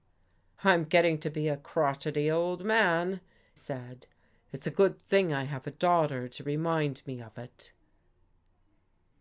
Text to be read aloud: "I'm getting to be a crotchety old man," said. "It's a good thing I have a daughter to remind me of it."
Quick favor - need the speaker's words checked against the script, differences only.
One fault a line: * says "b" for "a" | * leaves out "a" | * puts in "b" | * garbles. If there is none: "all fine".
all fine